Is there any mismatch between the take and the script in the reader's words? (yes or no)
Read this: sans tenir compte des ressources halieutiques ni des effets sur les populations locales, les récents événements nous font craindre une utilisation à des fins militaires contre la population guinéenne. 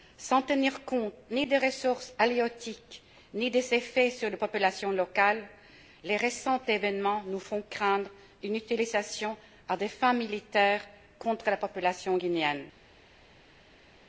yes